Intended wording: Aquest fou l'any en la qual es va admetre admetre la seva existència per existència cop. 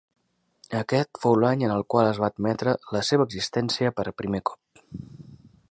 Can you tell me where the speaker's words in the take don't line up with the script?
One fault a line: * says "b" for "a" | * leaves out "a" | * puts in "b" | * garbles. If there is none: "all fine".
* says "el" for "la"
* leaves out "admetre"
* says "primer" for "existència"